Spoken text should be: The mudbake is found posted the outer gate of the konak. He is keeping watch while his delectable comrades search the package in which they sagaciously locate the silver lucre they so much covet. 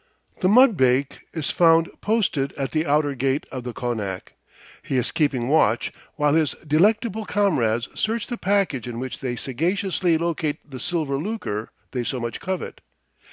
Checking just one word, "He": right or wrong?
right